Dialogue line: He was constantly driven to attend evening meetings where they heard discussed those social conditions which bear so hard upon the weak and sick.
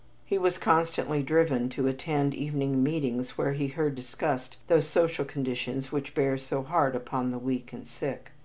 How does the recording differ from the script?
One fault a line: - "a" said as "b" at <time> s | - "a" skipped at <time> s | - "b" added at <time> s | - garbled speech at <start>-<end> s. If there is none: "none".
- "they" said as "he" at 3.5 s